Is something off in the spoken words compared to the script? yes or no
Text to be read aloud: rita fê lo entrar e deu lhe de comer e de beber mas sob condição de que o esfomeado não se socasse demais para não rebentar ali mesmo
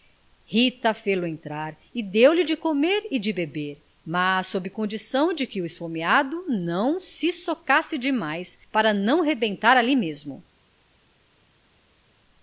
no